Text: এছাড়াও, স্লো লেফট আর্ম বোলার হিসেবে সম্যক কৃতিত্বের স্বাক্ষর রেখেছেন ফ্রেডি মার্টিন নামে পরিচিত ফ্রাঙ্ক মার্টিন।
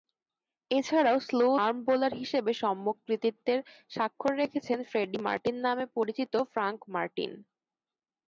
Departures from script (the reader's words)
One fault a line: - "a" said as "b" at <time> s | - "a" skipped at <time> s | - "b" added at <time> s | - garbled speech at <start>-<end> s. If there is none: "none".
- "লেফট" skipped at 1.5 s